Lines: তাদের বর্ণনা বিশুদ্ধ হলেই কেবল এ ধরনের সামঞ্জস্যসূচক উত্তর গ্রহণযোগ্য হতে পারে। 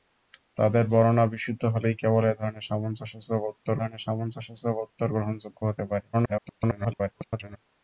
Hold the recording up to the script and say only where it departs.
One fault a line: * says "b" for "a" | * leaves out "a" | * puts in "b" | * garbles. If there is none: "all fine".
* puts in "ধরনের সামঞ্জস্যসূচক উত্তর"
* garbles